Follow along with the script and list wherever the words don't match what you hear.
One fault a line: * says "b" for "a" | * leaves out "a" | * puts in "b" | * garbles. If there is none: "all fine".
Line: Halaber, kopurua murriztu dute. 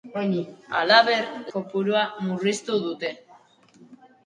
all fine